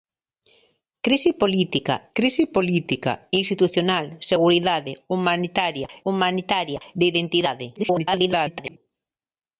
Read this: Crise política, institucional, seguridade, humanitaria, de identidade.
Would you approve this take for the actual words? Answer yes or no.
no